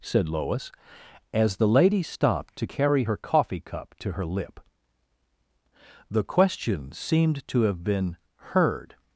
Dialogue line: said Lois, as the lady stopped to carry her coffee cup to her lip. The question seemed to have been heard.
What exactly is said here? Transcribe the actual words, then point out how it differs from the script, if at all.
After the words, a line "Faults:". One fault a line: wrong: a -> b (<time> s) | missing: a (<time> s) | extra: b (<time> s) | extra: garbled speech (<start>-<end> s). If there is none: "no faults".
said Lois, as the lady stopped to carry her coffee cup to her lip. The question seemed to have been heard.
Faults:
no faults